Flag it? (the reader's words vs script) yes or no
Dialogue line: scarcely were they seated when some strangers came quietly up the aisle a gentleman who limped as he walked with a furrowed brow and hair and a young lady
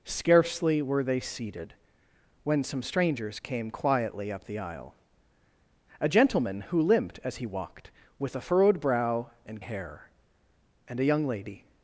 no